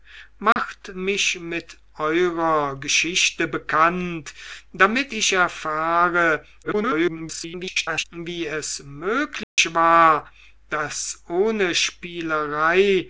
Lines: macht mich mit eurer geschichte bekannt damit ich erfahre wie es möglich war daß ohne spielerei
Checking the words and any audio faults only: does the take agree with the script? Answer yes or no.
no